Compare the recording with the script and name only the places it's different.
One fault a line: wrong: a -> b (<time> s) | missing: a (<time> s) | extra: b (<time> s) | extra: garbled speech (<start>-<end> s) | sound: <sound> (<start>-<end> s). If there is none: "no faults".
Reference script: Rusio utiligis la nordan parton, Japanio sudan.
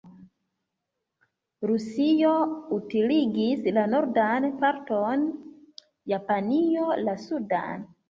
extra: la (7.1 s)